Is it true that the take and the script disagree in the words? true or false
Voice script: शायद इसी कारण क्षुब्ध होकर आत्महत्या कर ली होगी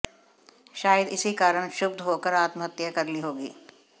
false